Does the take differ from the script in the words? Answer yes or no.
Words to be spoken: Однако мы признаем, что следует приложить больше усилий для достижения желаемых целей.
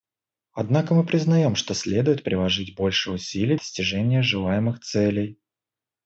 yes